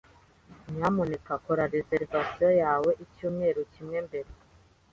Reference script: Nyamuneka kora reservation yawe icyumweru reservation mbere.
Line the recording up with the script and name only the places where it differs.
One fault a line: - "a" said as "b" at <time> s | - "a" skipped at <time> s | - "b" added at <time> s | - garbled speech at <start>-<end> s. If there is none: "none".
- "reservation" said as "kimwe" at 3.7 s